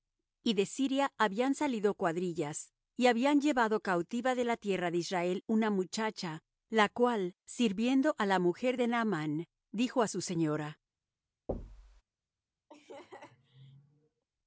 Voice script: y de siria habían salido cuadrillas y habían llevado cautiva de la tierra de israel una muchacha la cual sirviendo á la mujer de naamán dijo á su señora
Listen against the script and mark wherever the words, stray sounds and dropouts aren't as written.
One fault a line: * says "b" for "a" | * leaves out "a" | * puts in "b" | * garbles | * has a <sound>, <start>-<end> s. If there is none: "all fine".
* has a thud, 11.5-12.0 s
* has a laugh, 12.7-14.2 s